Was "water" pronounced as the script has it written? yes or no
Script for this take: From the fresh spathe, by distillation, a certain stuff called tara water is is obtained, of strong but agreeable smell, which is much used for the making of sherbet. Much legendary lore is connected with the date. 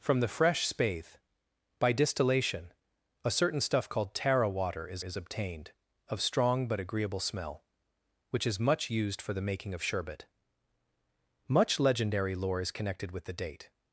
yes